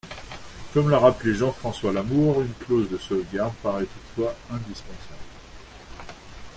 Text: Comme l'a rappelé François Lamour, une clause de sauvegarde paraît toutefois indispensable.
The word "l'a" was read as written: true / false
true